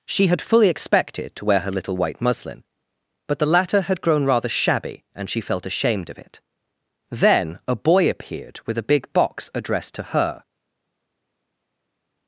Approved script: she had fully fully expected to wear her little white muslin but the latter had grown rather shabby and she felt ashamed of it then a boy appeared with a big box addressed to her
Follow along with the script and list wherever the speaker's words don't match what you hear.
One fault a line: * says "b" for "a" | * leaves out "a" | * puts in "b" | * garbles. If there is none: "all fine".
* leaves out "fully"